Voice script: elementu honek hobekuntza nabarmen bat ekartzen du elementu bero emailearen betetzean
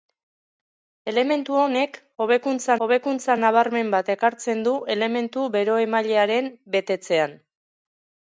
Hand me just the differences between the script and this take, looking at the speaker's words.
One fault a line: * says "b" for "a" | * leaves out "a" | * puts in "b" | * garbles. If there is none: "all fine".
* puts in "hobekuntza"